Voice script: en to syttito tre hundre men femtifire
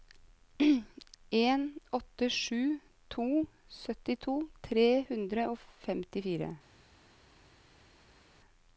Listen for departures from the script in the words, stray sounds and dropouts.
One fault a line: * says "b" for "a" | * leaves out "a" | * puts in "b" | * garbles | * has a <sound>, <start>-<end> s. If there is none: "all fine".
* puts in "åtte sju"
* says "og" for "men"